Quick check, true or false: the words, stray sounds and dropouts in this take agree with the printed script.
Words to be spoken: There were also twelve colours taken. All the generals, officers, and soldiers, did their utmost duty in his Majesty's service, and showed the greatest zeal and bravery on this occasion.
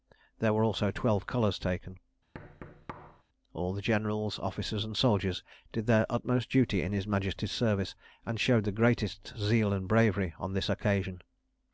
false